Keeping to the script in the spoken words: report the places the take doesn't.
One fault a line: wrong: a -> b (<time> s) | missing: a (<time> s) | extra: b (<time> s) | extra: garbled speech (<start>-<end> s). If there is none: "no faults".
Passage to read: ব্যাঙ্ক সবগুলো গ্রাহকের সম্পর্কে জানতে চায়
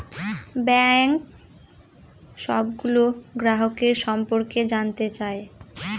no faults